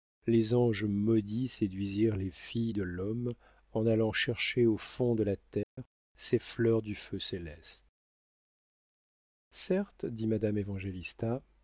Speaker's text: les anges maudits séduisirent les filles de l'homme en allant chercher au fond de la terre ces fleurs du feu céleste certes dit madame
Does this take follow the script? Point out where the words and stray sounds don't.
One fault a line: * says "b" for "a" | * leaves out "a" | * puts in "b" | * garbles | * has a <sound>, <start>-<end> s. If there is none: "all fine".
* has a dropout, 5.6-5.8 s